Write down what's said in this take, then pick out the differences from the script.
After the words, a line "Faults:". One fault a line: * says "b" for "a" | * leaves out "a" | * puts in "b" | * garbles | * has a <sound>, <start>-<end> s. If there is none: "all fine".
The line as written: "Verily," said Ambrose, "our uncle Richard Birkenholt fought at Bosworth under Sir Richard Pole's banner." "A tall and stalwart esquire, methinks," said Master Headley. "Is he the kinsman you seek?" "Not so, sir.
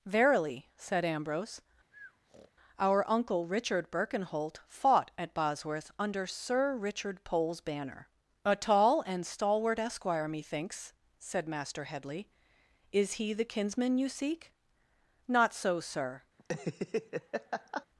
"Verily," said Ambrose, "our uncle Richard Birkenholt fought at Bosworth under Sir Richard Pole's banner." "A tall and stalwart esquire, methinks," said Master Headley. "Is he the kinsman you seek?" "Not so, sir.
Faults:
* has a breath, 1.9-2.5 s
* has a laugh, 16.4-17.9 s